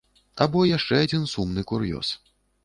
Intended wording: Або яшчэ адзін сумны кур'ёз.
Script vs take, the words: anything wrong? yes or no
no